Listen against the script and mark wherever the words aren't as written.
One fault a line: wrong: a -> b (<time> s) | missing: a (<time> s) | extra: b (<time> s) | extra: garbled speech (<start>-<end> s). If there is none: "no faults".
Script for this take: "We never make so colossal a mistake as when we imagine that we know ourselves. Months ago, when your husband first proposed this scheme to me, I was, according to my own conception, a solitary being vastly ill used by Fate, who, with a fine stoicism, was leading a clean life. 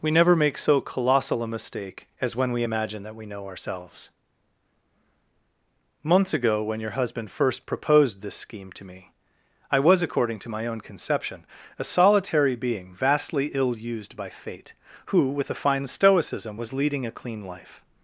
no faults